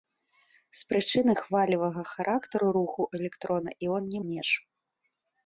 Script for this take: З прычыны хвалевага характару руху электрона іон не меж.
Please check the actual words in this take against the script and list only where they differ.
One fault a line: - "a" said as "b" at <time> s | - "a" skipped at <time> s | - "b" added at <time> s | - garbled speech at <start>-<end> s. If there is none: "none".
none